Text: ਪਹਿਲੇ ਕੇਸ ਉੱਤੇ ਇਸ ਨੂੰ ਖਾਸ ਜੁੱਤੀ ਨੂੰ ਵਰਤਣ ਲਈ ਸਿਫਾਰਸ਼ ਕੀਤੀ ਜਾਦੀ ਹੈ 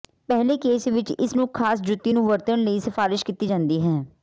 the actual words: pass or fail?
fail